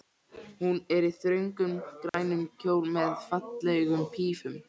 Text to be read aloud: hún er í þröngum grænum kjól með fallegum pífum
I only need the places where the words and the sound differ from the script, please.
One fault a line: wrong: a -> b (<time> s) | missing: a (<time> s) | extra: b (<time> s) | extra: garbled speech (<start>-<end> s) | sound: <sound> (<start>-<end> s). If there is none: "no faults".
sound: dropout (2.1-2.1 s)